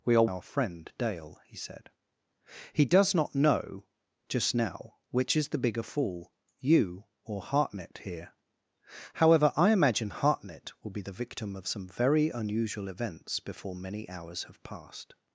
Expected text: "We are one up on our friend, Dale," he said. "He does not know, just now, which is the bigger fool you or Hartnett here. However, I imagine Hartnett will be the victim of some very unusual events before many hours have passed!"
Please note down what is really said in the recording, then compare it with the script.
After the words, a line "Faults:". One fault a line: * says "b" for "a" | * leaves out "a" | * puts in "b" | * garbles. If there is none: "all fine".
"We are our friend, Dale," he said. "He does not know, just now, which is the bigger fool you or Hartnett here. However, I imagine Hartnett will be the victim of some very unusual events before many hours have passed!"
Faults:
* leaves out "one up on"